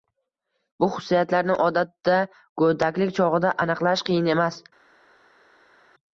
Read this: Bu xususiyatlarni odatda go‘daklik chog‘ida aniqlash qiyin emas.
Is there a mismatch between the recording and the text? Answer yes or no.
no